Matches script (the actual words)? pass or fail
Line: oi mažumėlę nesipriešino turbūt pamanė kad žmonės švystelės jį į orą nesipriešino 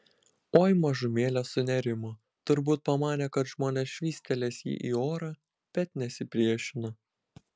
fail